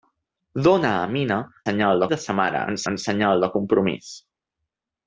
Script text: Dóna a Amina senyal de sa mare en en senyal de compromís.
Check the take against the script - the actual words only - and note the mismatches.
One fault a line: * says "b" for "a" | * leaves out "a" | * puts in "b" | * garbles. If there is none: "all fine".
all fine